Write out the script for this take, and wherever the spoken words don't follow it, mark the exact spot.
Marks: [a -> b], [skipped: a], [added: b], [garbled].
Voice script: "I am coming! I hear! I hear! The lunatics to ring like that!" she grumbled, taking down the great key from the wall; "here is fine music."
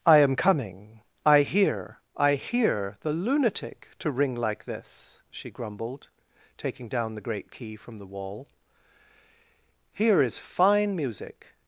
"I am coming! I hear! I hear! The [lunatics -> lunatic] to ring like [that!" -> this] she grumbled, taking down the great key from the wall; "here is fine music."